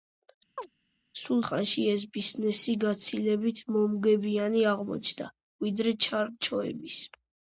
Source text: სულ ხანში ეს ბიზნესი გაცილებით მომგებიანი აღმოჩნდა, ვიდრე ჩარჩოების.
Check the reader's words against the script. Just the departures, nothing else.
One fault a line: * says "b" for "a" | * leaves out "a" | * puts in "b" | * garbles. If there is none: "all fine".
all fine